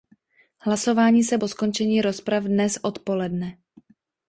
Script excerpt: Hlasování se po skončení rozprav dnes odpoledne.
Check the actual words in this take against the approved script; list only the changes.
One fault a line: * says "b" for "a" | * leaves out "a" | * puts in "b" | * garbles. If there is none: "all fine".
all fine